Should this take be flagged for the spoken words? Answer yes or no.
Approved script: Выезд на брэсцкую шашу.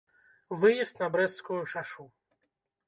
no